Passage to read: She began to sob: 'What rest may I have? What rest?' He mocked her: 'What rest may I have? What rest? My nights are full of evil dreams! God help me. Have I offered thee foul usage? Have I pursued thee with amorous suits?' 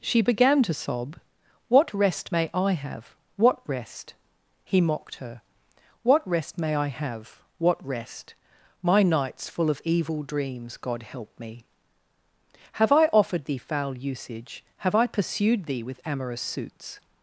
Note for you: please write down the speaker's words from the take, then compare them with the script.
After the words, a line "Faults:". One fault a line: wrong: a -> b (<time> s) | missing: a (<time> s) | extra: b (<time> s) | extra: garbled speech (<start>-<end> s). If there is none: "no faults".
She began to sob: 'What rest may I have? What rest?' He mocked her: 'What rest may I have? What rest? My nights full of evil dreams! God help me. Have I offered thee foul usage? Have I pursued thee with amorous suits?'
Faults:
missing: are (9.5 s)